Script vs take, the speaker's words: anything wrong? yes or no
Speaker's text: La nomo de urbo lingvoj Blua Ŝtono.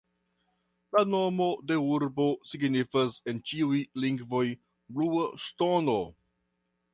yes